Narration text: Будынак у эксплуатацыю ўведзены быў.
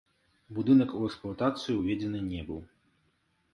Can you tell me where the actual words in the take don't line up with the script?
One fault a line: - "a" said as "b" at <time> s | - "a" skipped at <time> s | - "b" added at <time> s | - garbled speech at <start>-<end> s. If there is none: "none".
- "не" added at 2.3 s